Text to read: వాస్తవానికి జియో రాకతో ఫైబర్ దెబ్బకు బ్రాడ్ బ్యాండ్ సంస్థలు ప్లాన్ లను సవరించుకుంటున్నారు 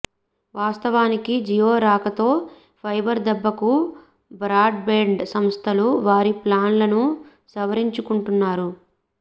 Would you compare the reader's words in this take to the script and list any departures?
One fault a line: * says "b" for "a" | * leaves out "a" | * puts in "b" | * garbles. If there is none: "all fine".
* puts in "వారి"